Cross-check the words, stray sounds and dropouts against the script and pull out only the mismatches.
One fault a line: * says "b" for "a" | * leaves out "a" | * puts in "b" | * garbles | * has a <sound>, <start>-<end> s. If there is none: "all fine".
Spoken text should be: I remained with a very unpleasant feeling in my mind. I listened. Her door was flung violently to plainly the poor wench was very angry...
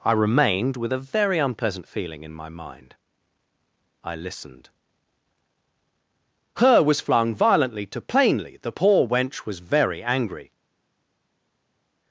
* leaves out "door"